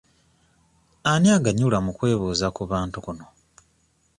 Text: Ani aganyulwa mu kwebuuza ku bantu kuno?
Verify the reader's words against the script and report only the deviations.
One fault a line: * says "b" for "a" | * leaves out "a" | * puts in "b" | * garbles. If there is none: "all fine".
all fine